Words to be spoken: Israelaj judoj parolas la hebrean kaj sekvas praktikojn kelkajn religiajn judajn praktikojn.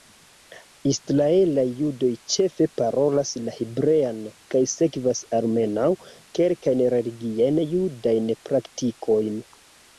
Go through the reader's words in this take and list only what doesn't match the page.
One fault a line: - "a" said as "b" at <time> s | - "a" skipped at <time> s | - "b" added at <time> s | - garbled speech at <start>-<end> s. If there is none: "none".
- "ĉefe" added at 2.3 s
- "praktikojn" said as "almenaŭ" at 5.4 s